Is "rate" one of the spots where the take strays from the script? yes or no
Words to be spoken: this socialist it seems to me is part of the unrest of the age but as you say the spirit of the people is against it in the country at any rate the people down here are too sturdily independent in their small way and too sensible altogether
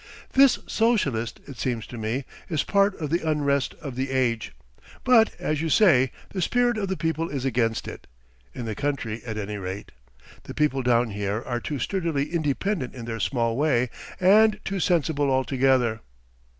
no